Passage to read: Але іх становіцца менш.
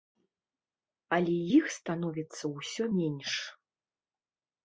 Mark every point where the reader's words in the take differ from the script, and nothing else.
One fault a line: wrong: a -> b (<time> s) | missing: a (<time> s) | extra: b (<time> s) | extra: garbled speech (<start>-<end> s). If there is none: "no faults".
extra: ўсё (2.6 s)